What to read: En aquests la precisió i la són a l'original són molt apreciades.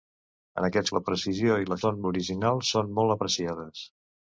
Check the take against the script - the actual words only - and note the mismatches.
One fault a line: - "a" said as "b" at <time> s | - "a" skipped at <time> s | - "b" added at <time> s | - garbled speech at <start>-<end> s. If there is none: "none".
none